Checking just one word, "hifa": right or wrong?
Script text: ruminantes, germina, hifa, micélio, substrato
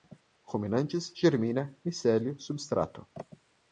wrong